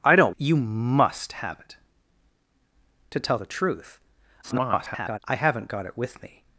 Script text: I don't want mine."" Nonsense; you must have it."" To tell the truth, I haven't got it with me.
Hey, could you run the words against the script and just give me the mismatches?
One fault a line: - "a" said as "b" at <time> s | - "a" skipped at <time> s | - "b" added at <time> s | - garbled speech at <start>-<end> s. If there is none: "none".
- "want mine Nonsense" skipped at 0.3 s
- garbled speech at 4.4-5.2 s